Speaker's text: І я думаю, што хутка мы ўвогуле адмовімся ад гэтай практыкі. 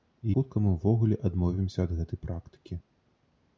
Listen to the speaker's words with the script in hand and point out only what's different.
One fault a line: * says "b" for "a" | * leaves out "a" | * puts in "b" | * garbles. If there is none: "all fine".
* leaves out "я думаю што"